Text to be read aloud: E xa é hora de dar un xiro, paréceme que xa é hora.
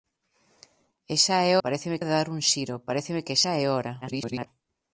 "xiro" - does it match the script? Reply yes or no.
yes